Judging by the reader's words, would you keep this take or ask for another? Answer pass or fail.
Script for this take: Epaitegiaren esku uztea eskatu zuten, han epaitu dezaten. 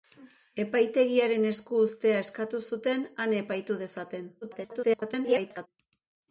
fail